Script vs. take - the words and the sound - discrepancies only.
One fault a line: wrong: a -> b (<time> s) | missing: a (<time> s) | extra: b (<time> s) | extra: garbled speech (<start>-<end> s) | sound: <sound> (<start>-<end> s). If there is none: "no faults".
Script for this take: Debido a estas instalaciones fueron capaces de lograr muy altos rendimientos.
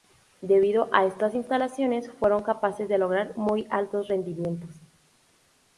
no faults